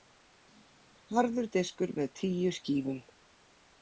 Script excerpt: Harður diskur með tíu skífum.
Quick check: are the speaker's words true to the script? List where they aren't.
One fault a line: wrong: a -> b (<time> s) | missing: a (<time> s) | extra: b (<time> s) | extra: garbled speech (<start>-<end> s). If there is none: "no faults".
no faults